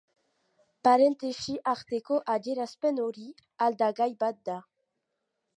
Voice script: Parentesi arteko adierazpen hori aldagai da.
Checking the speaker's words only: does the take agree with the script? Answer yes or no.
no